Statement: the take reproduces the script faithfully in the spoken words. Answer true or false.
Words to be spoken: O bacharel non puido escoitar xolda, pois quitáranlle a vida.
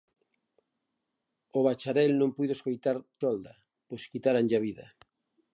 true